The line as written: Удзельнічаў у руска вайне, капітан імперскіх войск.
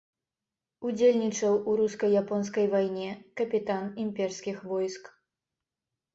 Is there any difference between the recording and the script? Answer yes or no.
yes